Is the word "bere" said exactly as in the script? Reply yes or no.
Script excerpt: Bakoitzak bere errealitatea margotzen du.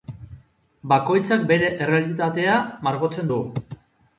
yes